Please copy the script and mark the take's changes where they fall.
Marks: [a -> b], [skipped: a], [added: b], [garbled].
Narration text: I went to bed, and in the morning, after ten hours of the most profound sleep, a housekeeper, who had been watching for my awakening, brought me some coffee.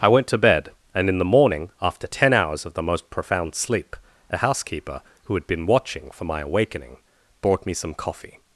I went to bed, and in the morning, after ten hours of the most profound sleep, a housekeeper, who had been watching for my awakening, brought me some coffee.